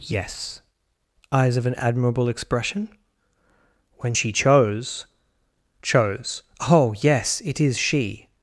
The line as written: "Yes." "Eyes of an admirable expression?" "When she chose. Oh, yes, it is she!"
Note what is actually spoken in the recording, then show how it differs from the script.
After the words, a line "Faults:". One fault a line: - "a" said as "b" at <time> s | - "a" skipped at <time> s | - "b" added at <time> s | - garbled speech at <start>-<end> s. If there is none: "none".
"Yes." "Eyes of an admirable expression?" "When she chose chose. Oh, yes, it is she!"
Faults:
- "chose" added at 5.8 s